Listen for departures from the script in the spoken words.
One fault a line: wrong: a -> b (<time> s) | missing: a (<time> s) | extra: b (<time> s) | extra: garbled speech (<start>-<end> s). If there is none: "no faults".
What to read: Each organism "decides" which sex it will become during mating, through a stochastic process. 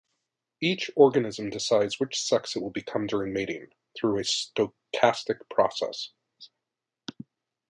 no faults